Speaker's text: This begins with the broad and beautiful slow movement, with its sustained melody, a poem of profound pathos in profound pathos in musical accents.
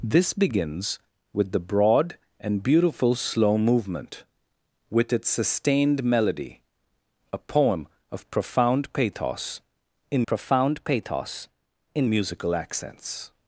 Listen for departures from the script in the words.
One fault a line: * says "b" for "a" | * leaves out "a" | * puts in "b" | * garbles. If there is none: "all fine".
all fine